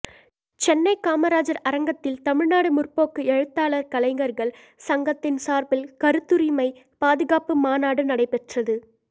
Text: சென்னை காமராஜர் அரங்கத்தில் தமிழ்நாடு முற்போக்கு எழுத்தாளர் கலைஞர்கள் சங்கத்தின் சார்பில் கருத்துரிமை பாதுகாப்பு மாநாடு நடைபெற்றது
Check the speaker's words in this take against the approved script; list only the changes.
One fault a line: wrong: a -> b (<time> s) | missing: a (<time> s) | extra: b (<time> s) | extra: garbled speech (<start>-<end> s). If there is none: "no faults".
no faults